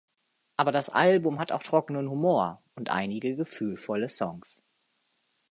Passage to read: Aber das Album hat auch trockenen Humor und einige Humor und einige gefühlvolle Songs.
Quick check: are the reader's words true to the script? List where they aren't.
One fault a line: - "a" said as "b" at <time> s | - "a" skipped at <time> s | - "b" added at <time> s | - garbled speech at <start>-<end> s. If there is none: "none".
- "Humor und einige" skipped at 3.4 s